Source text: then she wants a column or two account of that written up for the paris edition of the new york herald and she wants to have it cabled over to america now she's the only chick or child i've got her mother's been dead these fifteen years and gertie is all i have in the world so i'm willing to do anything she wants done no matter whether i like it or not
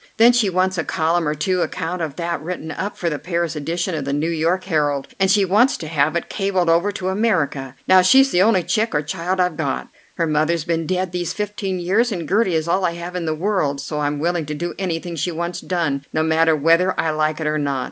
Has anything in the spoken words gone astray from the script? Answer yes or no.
no